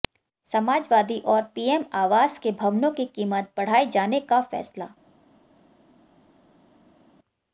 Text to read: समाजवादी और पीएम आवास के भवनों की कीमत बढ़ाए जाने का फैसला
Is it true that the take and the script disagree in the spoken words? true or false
false